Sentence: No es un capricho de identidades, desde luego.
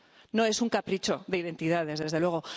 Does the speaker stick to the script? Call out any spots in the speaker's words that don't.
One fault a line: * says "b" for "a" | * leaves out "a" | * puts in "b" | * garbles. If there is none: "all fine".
all fine